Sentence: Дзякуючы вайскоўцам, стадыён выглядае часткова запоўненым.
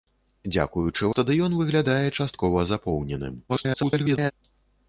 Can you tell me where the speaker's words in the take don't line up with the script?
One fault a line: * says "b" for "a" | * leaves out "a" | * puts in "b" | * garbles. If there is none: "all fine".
* leaves out "вайскоўцам"
* garbles